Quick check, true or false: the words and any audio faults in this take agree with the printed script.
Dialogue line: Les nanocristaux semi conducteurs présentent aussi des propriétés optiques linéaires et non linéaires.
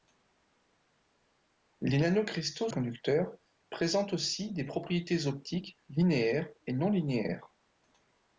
false